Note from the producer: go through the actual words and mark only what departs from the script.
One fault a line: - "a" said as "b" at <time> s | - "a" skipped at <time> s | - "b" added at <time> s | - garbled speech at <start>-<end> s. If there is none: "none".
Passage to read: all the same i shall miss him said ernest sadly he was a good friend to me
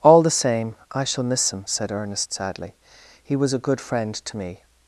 none